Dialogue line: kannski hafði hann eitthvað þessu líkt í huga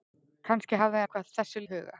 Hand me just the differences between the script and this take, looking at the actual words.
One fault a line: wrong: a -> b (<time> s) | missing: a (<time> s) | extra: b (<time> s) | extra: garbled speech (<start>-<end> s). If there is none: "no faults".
missing: hann (1.0 s)
missing: líkt (1.6 s)